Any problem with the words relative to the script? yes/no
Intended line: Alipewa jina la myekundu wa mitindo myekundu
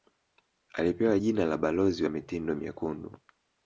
yes